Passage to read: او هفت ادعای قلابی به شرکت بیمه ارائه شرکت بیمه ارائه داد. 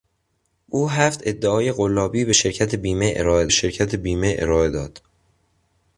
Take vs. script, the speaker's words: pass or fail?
pass